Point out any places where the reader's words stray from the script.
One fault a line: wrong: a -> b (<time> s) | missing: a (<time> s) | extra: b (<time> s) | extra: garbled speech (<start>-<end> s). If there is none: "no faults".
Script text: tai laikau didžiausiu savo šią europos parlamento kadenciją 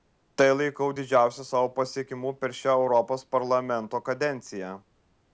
extra: pasiekimu per (1.8 s)